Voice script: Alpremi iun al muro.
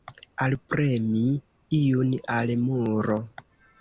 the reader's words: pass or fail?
pass